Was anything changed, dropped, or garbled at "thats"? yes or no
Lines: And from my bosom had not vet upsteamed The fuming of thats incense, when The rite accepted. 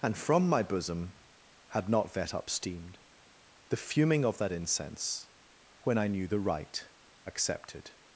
yes